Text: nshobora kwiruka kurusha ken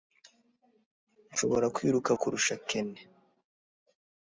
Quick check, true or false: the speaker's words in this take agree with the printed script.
true